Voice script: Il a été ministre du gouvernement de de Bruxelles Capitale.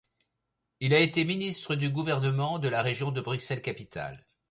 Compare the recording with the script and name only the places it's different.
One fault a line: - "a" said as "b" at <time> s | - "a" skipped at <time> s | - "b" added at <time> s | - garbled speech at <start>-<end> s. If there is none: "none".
- "la Région" added at 2.7 s